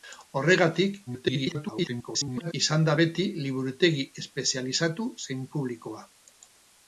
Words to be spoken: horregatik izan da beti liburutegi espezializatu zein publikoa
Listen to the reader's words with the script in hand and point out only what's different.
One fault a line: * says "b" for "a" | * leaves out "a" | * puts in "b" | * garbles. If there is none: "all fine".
* garbles